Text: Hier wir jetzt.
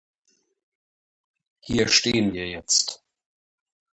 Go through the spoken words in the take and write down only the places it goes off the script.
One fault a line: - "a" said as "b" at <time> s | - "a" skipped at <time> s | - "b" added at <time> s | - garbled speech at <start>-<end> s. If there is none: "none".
- "stehen" added at 1.9 s